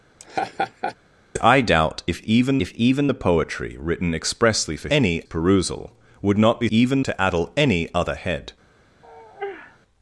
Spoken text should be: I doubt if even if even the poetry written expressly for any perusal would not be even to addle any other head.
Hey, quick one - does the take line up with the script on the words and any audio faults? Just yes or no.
no